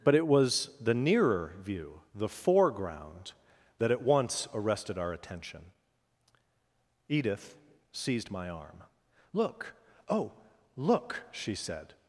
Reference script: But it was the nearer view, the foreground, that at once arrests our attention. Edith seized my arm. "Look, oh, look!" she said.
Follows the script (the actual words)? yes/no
no